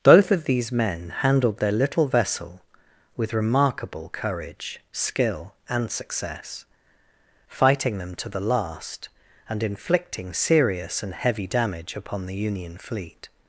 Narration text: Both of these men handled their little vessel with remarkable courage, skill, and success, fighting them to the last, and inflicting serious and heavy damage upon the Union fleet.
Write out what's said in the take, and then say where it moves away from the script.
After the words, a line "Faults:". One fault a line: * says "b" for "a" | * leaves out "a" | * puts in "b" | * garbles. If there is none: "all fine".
Both of these men handled their little vessel with remarkable courage, skill, and success, fighting them to the last, and inflicting serious and heavy damage upon the Union fleet.
Faults:
all fine